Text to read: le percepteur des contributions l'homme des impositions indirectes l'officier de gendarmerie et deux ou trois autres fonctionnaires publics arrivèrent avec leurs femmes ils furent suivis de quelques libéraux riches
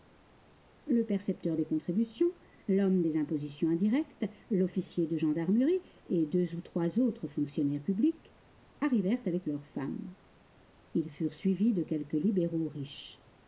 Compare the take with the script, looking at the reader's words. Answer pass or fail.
pass